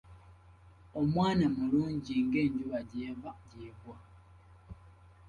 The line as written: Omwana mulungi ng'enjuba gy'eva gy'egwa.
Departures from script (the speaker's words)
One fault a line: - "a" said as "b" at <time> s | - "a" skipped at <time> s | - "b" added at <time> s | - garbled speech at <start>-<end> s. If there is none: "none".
none